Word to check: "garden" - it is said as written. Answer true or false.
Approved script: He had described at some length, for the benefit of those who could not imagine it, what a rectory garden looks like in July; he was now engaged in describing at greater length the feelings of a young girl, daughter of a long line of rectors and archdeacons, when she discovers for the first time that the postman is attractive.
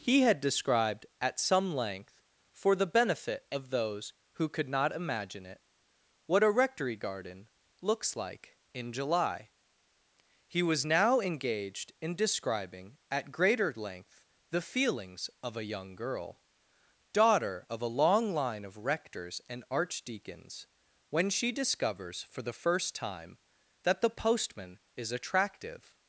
true